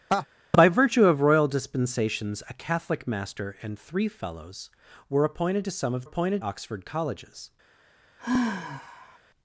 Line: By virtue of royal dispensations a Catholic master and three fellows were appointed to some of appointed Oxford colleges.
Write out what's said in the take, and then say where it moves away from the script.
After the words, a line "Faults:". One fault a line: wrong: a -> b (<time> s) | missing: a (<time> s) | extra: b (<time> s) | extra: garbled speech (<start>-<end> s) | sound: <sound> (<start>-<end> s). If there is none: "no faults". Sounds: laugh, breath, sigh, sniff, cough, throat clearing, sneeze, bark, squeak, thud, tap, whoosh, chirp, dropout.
By virtue of royal dispensations a Catholic master and three fellows were appointed to some of appointed Oxford colleges.
Faults:
sound: laugh (0.1-0.3 s)
sound: sigh (8.2-9.2 s)